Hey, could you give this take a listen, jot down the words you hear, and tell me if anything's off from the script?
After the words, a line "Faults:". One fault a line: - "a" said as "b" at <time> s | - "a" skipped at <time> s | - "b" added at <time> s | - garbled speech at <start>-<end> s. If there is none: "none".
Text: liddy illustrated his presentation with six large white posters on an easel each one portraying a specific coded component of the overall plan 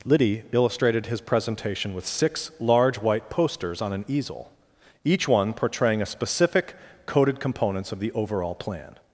liddy illustrated his presentation with six large white posters on an easel each one portraying a specific coded components of the overall plan
Faults:
- "component" said as "components" at 7.4 s